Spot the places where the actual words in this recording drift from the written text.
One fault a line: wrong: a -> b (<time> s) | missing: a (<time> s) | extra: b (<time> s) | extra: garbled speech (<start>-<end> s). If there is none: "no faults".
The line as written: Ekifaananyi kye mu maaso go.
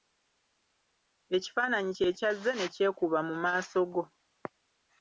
extra: kyazze ne kyekuba (2.2 s)